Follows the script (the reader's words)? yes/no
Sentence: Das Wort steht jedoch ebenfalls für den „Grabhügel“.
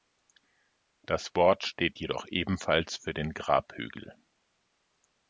yes